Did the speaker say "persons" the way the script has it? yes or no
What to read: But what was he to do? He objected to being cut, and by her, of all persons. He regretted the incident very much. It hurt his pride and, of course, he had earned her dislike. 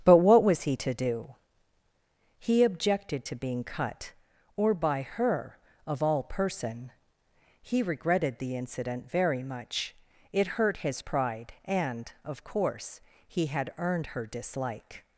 no